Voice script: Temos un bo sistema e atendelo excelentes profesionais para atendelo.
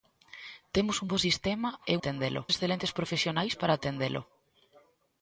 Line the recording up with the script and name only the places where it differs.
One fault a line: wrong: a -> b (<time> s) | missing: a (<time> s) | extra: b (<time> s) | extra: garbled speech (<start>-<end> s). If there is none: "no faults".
no faults